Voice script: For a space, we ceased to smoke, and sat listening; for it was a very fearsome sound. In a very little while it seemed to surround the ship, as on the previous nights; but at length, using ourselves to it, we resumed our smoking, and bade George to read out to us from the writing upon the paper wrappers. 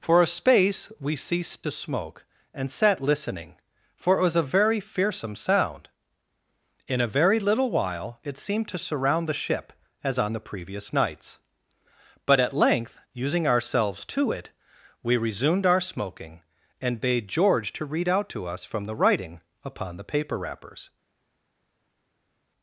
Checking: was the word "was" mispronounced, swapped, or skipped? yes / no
no